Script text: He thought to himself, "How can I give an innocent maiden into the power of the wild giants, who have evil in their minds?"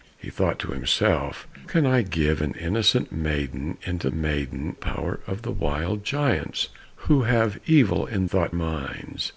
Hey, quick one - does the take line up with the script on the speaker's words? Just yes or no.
no